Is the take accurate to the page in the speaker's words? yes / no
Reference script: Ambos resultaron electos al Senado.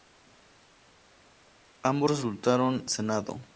no